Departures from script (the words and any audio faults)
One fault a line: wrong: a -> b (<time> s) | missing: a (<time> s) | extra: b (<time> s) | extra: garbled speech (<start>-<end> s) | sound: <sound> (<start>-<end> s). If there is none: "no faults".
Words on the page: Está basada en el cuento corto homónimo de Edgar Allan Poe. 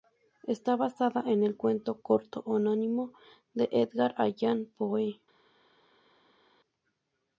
no faults